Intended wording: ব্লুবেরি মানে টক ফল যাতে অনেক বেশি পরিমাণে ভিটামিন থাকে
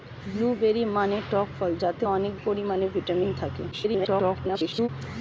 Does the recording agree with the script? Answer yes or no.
no